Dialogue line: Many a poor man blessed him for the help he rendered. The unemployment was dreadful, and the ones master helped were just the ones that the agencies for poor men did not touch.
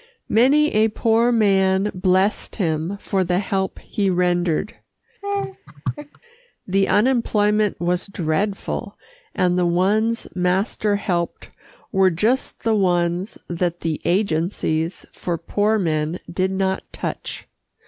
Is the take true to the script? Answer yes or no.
yes